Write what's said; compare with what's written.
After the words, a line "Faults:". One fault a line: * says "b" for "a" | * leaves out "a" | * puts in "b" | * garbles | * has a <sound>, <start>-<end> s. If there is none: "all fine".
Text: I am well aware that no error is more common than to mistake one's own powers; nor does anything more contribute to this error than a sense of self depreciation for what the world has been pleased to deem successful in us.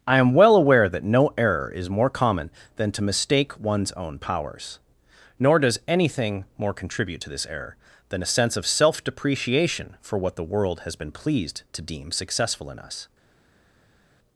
I am well aware that no error is more common than to mistake one's own powers; nor does anything more contribute to this error than a sense of self depreciation for what the world has been pleased to deem successful in us.
Faults:
all fine